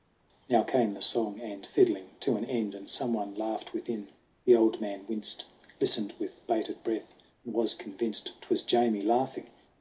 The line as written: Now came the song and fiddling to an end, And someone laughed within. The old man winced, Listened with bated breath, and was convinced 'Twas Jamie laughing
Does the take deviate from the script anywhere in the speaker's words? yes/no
no